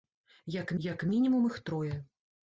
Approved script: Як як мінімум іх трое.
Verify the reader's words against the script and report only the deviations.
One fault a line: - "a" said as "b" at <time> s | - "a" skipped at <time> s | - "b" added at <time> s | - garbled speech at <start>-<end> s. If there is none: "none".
none